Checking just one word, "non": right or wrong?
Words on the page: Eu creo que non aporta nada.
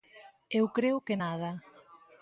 wrong